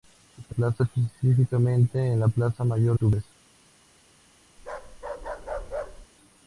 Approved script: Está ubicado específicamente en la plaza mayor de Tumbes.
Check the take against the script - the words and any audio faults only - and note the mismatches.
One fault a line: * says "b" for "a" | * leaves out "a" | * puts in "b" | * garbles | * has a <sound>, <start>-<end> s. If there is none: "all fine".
* says "plaza" for "ubicado"
* leaves out "de"
* has a bark, 4.6-6.1 s